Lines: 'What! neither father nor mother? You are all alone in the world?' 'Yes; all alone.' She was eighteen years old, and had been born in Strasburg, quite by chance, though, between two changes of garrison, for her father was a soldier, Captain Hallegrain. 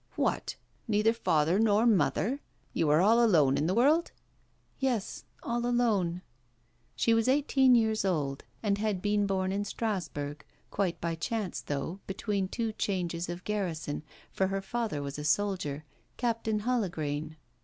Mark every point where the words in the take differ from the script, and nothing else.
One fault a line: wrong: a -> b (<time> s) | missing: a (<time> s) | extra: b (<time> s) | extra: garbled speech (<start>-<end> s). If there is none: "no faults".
no faults